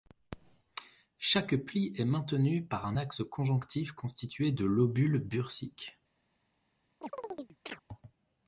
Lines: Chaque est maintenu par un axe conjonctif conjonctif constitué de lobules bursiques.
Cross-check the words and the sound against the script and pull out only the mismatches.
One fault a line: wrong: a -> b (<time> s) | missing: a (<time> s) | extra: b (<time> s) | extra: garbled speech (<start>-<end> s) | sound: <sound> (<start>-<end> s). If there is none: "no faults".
extra: pli (1.6 s)
missing: conjonctif (3.9 s)
sound: chirp (7.0-7.8 s)